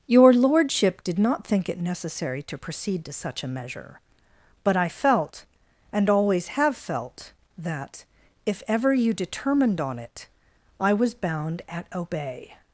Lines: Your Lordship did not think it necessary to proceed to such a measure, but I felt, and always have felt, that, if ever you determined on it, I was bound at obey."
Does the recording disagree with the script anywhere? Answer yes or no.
no